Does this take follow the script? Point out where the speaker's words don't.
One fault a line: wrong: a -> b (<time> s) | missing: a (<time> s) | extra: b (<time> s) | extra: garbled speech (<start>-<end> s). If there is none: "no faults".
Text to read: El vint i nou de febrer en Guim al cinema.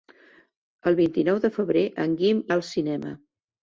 no faults